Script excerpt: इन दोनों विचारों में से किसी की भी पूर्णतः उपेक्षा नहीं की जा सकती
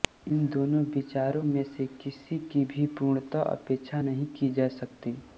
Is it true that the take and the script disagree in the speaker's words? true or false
false